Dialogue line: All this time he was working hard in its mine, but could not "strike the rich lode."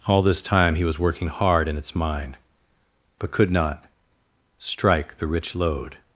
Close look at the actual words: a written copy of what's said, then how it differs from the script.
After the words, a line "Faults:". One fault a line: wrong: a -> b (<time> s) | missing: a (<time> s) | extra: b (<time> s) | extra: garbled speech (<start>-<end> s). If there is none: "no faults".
All this time he was working hard in its mine, but could not "strike the rich lode."
Faults:
no faults